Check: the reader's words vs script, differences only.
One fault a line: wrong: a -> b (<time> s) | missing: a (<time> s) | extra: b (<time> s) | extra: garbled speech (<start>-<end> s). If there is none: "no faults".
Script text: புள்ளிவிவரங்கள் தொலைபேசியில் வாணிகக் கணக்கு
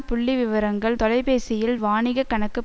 no faults